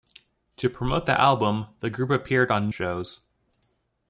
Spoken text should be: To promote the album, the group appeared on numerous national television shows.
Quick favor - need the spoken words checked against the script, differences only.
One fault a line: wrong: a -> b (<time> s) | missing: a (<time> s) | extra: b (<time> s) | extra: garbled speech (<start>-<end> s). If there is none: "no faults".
missing: numerous national television (2.7 s)